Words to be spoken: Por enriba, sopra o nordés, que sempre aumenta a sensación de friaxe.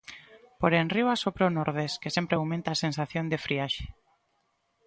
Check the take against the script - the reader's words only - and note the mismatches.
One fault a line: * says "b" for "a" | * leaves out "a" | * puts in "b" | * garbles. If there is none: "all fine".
all fine